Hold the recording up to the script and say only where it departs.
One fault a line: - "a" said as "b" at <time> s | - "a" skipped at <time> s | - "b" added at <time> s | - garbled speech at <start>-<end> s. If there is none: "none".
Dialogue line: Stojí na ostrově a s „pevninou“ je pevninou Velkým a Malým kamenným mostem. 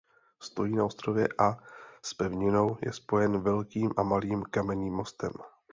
- "pevninou" said as "spojen" at 2.9 s